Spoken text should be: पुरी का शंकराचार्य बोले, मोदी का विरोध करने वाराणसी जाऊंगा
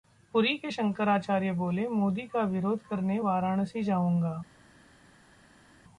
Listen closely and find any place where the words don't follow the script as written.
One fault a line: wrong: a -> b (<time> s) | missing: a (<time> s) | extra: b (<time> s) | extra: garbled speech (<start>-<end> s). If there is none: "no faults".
wrong: का -> के (0.6 s)